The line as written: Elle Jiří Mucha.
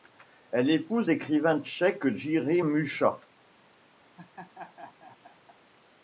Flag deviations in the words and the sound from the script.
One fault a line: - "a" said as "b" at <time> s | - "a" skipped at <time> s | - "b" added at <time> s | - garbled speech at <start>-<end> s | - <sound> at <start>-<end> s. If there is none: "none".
- "épouse l'écrivain tchèque" added at 0.7 s
- laugh at 4.2-5.6 s